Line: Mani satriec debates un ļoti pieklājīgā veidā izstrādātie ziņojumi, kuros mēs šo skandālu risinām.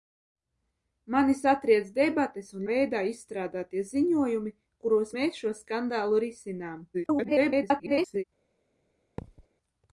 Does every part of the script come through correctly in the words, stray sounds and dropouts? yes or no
no